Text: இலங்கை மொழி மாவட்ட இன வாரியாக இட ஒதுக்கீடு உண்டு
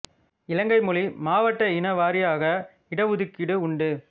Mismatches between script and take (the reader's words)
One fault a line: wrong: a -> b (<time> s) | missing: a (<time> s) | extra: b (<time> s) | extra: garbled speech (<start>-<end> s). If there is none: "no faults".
no faults